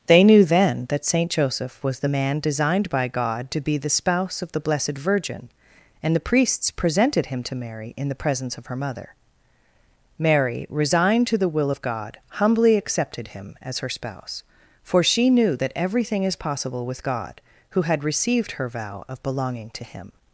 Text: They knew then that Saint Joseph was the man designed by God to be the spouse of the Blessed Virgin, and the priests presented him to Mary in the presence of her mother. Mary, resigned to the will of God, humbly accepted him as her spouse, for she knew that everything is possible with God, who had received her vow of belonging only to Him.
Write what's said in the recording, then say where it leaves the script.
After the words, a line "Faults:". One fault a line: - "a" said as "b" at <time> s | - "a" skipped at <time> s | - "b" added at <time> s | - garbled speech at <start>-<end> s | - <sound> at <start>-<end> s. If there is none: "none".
They knew then that Saint Joseph was the man designed by God to be the spouse of the Blessed Virgin, and the priests presented him to Mary in the presence of her mother. Mary, resigned to the will of God, humbly accepted him as her spouse, for she knew that everything is possible with God, who had received her vow of belonging to Him.
Faults:
- "only" skipped at 19.7 s